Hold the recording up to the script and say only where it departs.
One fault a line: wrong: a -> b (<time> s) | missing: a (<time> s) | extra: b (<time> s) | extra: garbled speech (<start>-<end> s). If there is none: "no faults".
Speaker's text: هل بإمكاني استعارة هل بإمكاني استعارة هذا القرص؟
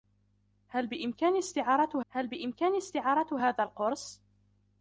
no faults